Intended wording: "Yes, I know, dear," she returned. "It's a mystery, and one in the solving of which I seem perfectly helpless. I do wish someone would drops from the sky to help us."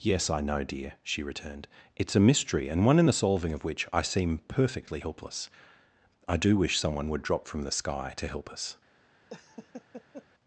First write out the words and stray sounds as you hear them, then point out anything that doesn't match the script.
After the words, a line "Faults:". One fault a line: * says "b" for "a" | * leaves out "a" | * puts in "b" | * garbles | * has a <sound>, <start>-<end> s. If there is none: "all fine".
"Yes, I know, dear," she returned. "It's a mystery, and one in the solving of which I seem perfectly helpless. I do wish someone would drop from the sky to help us."
Faults:
* says "drop" for "drops"
* has a laugh, 9.3-10.3 s